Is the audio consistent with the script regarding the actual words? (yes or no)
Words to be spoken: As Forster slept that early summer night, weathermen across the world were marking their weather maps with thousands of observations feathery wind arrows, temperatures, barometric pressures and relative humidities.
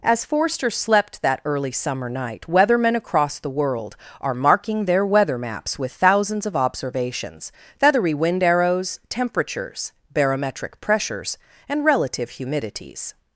no